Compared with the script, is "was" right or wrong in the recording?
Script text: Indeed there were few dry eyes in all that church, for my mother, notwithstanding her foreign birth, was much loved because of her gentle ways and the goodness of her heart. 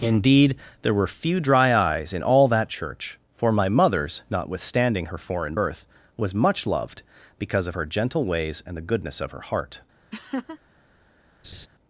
right